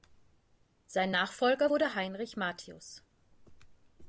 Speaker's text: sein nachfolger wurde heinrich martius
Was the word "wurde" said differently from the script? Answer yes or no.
no